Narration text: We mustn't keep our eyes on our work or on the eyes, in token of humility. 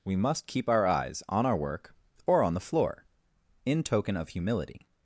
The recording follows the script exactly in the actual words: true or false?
false